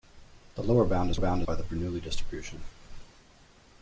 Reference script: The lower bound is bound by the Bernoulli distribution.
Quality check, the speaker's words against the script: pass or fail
pass